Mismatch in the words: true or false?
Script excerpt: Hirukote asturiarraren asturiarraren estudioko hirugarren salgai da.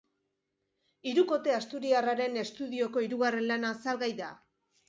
true